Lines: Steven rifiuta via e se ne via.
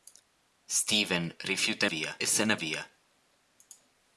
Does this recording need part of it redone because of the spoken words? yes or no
no